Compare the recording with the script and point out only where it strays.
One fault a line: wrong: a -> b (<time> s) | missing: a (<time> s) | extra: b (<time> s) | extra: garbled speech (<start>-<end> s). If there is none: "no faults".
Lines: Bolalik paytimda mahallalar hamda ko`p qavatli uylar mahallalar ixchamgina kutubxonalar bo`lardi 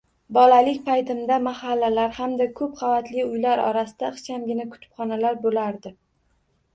wrong: mahallalar -> orasida (3.6 s)